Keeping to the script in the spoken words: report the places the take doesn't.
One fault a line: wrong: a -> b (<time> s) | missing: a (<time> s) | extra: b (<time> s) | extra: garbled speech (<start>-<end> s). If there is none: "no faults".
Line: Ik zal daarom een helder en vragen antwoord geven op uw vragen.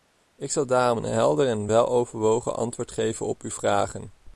wrong: vragen -> weloverwogen (1.6 s)